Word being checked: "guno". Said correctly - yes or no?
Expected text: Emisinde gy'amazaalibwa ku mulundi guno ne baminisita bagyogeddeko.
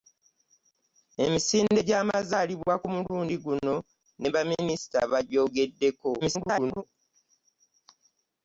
yes